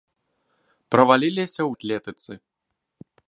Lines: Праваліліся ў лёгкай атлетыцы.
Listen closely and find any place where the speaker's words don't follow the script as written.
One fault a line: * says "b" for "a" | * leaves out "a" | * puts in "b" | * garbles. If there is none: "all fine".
* leaves out "лёгкай"